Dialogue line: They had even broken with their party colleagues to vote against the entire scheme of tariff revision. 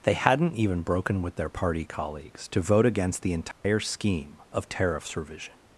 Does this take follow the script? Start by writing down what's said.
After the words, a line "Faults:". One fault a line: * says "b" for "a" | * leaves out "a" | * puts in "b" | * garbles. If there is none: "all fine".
They hadn't even broken with their party colleagues to vote against the entire scheme of tariffs revision.
Faults:
* says "hadn't" for "had"
* says "tariffs" for "tariff"